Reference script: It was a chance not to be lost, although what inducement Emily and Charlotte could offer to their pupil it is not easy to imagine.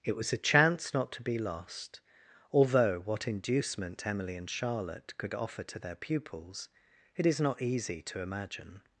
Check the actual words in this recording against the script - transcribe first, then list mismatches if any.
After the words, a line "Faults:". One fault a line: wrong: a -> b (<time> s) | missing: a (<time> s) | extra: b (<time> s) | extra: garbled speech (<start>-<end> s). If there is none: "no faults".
It was a chance not to be lost, although what inducement Emily and Charlotte could offer to their pupils it is not easy to imagine.
Faults:
wrong: pupil -> pupils (6.0 s)